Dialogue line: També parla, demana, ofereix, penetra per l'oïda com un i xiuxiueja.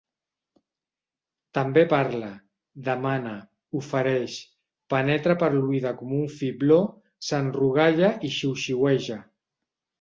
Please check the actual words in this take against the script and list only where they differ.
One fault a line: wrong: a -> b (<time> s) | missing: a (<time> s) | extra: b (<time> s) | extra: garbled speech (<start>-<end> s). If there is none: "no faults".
extra: fibló s'enrogalla (6.4 s)